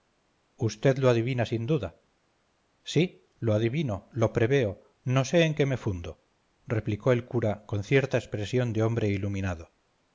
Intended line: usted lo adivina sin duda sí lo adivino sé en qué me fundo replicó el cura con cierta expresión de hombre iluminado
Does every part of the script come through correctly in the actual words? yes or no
no